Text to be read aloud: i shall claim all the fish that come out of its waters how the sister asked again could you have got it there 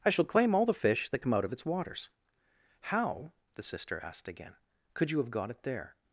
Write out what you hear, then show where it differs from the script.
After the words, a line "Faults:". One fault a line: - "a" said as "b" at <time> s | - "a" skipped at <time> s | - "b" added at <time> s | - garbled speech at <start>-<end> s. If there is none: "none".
i shall claim all the fish that come out of its waters how the sister asked again could you have got it there
Faults:
none